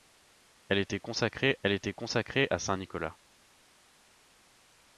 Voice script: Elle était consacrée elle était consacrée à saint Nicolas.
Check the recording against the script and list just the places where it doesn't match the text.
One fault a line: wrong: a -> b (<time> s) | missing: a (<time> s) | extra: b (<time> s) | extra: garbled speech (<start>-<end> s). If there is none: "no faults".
no faults